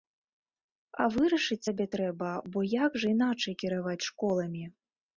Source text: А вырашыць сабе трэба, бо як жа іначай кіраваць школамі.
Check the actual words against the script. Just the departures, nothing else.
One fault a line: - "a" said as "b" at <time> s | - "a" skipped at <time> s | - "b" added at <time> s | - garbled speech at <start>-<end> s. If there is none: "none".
none